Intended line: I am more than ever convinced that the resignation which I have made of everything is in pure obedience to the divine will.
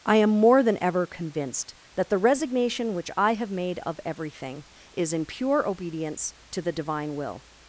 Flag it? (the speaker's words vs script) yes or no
no